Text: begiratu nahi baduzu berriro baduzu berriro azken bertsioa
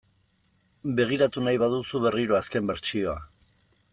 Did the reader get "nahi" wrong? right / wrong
right